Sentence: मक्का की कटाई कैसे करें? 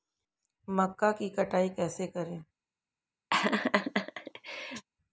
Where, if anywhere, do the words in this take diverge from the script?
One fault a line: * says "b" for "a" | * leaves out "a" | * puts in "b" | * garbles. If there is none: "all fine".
all fine